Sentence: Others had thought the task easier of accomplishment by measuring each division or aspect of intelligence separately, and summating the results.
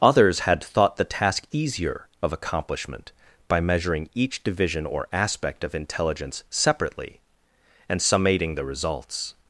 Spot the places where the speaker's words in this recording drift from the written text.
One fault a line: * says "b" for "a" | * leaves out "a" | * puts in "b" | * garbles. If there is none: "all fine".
all fine